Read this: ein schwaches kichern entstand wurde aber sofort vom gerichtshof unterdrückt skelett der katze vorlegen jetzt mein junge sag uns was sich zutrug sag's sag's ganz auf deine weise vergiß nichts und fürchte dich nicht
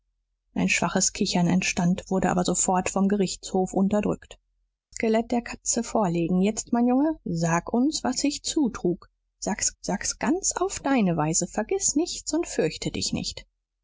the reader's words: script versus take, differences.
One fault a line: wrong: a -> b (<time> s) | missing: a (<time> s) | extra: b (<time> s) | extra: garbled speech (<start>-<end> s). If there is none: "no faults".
no faults